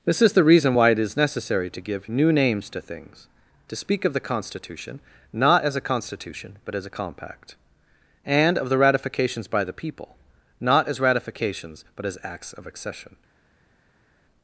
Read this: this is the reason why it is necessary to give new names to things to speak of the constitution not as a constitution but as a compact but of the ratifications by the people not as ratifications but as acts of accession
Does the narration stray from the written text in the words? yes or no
yes